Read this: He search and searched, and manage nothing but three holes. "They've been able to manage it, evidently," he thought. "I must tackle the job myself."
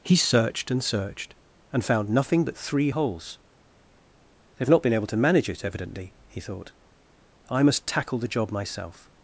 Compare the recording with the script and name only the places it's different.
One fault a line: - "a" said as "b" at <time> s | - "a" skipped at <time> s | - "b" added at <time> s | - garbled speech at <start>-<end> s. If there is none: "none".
- "search" said as "searched" at 0.1 s
- "manage" said as "found" at 1.8 s
- "not" added at 4.7 s